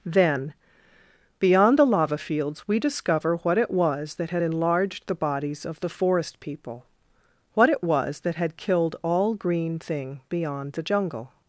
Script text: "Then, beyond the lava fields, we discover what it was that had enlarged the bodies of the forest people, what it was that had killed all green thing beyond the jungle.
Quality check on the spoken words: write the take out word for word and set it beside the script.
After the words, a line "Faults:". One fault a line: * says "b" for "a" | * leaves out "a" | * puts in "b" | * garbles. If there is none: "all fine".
"Then, beyond the lava fields, we discover what it was that had enlarged the bodies of the forest people, what it was that had killed all green thing beyond the jungle.
Faults:
all fine